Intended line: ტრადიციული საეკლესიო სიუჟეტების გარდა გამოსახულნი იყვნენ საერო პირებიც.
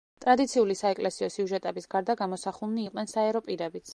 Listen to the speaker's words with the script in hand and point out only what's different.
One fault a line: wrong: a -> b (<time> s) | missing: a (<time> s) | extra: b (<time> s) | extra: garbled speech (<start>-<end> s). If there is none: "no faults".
no faults